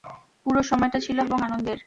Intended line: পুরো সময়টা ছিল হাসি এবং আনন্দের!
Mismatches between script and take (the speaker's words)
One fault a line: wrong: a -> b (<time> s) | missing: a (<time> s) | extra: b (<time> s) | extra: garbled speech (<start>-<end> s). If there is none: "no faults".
missing: হাসি (1.2 s)